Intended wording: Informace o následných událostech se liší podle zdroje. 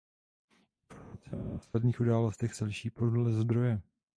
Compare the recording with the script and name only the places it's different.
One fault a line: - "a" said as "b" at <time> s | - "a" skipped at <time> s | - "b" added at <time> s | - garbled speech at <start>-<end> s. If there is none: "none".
none